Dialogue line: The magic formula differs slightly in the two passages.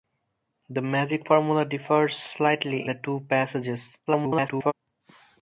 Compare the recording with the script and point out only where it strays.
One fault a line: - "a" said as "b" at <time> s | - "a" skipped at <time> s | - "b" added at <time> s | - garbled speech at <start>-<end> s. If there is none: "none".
- "in" skipped at 2.9 s
- garbled speech at 4.1-4.7 s